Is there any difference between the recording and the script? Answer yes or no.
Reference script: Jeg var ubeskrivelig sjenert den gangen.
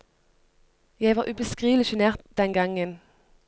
no